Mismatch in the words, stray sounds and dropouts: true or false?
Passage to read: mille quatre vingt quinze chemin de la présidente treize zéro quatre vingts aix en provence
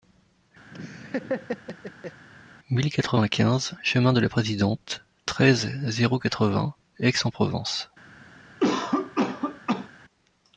true